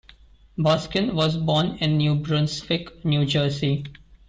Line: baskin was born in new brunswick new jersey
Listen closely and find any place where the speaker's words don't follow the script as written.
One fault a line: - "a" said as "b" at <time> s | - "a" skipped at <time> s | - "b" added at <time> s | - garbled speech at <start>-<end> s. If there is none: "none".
none